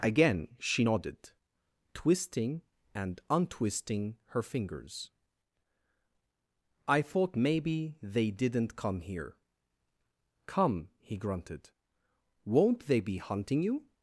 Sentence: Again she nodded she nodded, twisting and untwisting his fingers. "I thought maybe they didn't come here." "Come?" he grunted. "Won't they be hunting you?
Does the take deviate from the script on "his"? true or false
true